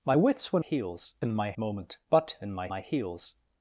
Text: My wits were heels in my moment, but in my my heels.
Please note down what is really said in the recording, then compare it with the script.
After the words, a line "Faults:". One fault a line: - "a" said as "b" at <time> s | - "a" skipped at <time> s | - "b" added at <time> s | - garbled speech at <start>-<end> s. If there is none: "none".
My wits were heels in my moment, but in my my heels.
Faults:
none